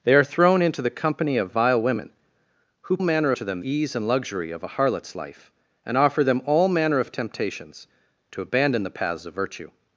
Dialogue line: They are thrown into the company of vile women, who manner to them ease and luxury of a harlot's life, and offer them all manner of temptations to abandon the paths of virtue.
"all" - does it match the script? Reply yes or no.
yes